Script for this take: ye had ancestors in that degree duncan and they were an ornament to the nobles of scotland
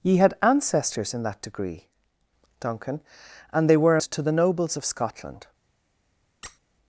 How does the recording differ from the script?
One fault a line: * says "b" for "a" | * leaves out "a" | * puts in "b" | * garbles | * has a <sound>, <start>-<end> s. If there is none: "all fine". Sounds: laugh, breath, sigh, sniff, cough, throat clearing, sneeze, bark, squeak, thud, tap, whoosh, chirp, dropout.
* leaves out "an ornament"
* has a squeak, 6.4-6.6 s